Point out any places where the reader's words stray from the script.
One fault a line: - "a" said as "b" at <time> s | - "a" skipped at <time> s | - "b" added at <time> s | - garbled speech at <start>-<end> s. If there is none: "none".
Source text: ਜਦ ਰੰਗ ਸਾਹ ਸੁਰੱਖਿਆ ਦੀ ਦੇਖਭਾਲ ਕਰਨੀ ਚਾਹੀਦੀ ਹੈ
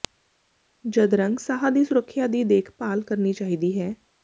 - "ਦੀ" added at 1.7 s